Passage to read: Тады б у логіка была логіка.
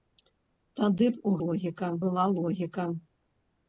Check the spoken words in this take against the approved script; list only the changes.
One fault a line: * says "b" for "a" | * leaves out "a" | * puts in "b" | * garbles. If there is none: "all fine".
all fine